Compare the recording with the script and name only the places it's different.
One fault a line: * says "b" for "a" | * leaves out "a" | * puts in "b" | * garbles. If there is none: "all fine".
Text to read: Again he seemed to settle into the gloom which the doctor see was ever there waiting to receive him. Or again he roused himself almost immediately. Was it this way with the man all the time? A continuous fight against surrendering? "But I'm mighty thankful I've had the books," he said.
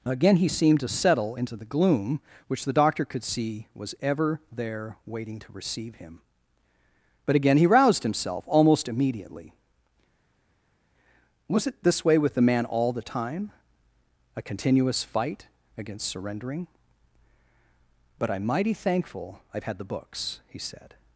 * puts in "could"
* says "But" for "Or"